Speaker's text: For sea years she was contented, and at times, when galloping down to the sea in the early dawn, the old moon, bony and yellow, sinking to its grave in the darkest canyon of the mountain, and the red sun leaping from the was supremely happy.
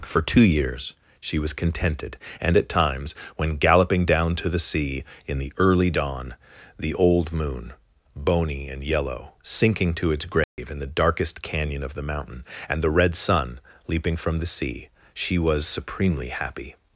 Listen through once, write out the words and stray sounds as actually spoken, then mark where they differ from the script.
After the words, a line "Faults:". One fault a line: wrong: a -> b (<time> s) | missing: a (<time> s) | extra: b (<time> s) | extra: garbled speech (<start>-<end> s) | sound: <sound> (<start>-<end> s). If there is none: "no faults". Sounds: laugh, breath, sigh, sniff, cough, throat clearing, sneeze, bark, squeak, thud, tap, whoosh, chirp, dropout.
For two years she was contented, and at times, when galloping down to the sea in the early dawn, the old moon, bony and yellow, sinking to its grave in the darkest canyon of the mountain, and the red sun leaping from the sea, she was supremely happy.
Faults:
wrong: sea -> two (0.2 s)
sound: dropout (10.4-10.6 s)
extra: sea she (14.5 s)